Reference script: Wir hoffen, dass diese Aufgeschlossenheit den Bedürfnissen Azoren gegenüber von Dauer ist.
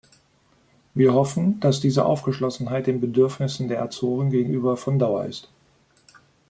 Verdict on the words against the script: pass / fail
fail